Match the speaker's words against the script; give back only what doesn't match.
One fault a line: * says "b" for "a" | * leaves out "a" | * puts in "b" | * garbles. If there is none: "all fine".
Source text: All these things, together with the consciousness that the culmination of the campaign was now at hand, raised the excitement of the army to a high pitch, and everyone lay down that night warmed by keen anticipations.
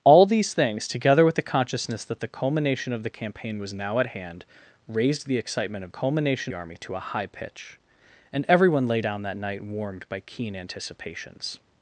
* says "culmination" for "the"